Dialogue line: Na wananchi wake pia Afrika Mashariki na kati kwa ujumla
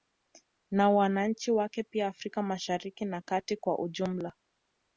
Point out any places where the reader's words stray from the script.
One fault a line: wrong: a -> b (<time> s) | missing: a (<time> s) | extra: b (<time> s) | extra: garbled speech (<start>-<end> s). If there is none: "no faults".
no faults